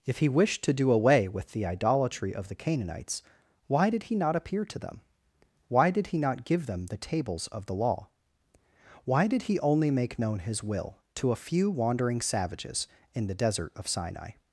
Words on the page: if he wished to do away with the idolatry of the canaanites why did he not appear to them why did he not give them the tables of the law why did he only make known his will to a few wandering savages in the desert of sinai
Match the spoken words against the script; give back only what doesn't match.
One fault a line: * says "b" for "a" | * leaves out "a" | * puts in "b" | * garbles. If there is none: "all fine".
all fine